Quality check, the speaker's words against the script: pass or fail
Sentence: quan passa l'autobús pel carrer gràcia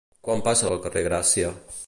fail